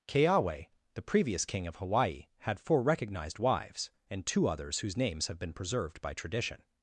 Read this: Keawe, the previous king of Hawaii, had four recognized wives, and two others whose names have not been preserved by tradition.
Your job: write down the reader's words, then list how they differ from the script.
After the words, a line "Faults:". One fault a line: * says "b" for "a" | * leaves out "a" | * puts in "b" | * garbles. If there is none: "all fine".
Keawe, the previous king of Hawaii, had four recognized wives, and two others whose names have been preserved by tradition.
Faults:
* leaves out "not"